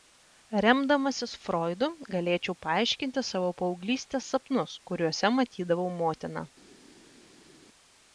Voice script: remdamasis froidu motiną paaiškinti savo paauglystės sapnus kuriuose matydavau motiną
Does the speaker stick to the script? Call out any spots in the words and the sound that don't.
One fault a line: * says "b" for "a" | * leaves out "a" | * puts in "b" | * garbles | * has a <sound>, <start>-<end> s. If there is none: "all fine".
* says "galėčiau" for "motiną"